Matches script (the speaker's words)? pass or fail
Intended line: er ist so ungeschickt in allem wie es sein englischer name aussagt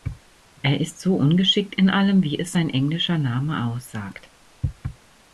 pass